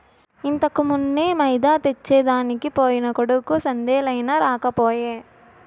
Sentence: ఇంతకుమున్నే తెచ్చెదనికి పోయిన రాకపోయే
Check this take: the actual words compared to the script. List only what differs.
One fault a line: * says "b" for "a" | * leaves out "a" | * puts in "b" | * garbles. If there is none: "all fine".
* puts in "మైదా"
* puts in "కొడుకు సందేలయినా"